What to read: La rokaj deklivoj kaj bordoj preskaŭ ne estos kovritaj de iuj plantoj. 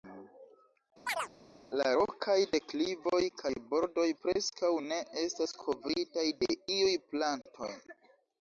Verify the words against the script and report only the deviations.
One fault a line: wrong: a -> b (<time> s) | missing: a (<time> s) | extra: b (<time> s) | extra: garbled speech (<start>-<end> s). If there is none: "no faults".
wrong: estos -> estas (5.3 s)